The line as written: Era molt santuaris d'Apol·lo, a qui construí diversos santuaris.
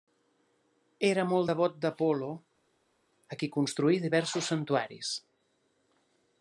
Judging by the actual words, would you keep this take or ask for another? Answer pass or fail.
fail